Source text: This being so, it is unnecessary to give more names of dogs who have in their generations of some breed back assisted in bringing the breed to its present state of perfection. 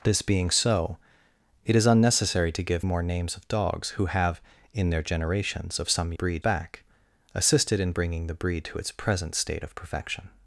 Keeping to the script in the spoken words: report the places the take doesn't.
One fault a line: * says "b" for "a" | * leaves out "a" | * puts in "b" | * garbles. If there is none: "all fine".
all fine